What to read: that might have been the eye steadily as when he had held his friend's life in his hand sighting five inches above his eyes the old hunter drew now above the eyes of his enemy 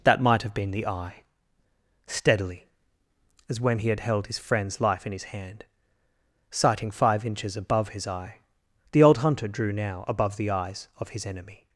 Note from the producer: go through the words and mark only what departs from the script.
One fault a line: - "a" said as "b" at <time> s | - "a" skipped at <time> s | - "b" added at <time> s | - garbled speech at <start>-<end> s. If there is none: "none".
- "eyes" said as "eye" at 8.1 s